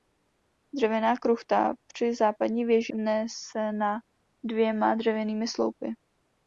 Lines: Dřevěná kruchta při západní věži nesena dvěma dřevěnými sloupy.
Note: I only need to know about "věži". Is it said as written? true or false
true